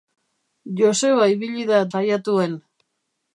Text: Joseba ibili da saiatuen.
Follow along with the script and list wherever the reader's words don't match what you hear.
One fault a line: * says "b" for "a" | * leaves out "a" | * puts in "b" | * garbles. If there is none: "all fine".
all fine